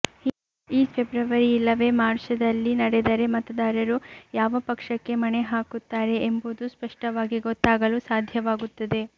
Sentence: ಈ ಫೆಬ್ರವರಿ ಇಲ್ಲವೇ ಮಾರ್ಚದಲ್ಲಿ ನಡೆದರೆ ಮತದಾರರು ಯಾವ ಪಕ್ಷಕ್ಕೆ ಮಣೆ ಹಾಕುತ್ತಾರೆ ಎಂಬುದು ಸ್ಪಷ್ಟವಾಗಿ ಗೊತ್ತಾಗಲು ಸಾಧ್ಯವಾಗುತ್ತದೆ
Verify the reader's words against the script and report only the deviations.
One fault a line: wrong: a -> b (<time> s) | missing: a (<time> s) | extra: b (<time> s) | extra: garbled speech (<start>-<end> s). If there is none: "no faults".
no faults